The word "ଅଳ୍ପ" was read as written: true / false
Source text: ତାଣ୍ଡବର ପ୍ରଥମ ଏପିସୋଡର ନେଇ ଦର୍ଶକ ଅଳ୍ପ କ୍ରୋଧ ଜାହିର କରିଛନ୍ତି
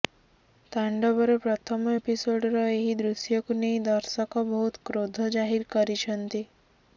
false